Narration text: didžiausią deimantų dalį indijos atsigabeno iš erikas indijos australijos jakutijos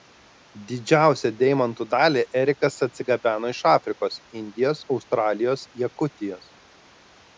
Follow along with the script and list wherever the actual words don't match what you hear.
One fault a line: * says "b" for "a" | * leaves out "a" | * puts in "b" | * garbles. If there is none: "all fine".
* says "erikas" for "indijos"
* says "afrikos" for "erikas"